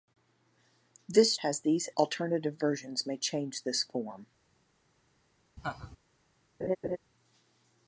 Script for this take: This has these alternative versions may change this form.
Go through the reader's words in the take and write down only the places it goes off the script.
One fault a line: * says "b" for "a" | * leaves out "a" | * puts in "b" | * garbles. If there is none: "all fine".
all fine